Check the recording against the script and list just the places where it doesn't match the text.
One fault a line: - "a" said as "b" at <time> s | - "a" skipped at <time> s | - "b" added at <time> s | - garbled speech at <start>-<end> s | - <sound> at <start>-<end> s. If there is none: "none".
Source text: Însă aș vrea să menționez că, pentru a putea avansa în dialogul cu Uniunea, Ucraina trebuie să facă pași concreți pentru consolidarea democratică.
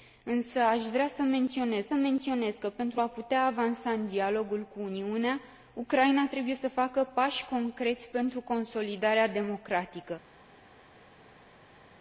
- "menționez" added at 1.9 s